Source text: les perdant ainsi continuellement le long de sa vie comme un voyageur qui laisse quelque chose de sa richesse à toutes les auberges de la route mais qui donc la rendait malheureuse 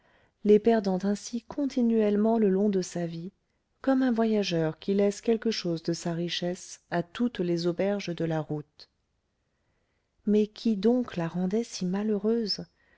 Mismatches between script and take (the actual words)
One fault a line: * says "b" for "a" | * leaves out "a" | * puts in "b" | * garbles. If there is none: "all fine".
* puts in "si"